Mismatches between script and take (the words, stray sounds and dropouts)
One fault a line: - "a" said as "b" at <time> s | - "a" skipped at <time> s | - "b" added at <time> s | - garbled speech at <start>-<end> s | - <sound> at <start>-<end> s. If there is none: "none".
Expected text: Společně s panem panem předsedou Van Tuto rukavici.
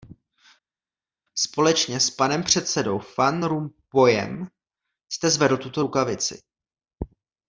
- "panem" skipped at 2.4 s
- "Rompuyem jste zvedl" added at 3.4 s